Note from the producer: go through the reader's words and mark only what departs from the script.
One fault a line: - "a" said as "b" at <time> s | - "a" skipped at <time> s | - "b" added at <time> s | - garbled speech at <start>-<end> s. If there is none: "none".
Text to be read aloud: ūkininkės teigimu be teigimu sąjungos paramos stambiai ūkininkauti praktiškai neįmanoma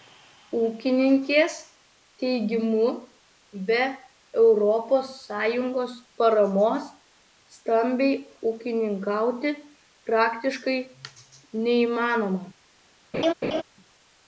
- "teigimu" said as "europos" at 4.4 s